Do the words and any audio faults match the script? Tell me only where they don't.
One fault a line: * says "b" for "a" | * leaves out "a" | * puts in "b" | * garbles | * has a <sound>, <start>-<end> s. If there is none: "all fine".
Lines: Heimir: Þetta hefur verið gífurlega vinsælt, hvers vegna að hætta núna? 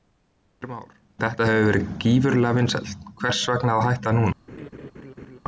* puts in "Már"
* has a laugh, 4.5-5.4 s